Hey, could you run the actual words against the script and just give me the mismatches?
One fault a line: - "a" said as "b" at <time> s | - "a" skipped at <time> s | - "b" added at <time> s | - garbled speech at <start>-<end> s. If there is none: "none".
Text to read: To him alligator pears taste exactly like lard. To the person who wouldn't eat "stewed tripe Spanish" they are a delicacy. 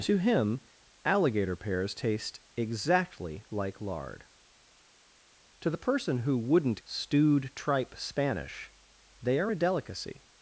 - "eat" skipped at 6.8 s